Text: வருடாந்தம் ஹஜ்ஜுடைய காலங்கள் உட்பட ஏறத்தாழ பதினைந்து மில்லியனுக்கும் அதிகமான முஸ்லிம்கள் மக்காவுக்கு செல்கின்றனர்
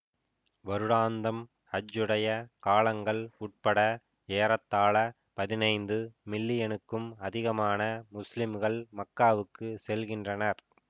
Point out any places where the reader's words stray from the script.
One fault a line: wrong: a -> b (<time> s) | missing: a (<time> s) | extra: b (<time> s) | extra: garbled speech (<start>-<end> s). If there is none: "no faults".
no faults